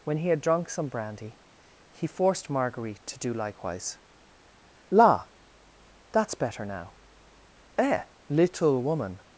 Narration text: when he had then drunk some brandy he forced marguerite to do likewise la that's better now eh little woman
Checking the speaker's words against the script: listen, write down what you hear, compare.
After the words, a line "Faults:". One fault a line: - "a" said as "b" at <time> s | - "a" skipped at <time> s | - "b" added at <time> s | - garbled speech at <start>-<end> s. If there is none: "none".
when he had drunk some brandy he forced marguerite to do likewise la that's better now eh little woman
Faults:
- "then" skipped at 0.4 s